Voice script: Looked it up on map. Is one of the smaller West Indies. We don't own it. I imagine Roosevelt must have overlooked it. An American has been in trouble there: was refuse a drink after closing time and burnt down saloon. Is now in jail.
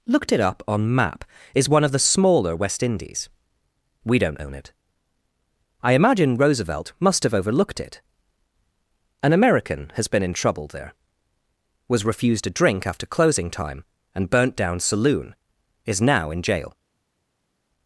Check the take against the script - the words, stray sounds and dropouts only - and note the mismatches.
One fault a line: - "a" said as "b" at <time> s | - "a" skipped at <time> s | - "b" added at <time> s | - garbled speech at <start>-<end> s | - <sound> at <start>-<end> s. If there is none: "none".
- "refuse" said as "refused" at 12.0 s